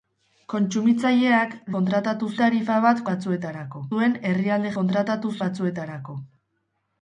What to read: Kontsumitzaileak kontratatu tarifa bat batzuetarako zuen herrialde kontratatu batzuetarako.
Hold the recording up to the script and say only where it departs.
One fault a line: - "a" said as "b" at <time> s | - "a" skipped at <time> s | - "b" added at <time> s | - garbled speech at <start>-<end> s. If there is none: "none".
none